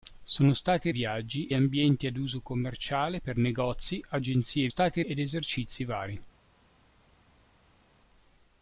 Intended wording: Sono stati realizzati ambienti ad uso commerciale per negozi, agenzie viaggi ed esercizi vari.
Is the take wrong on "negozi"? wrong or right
right